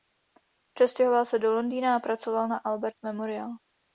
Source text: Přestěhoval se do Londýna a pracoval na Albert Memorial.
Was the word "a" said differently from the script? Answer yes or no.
no